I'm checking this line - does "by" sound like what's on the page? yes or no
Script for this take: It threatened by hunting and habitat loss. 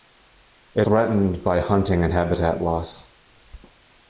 yes